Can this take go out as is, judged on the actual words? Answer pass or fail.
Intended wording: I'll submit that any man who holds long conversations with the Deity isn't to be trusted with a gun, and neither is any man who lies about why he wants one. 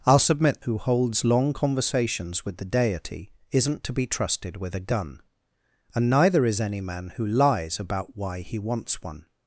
fail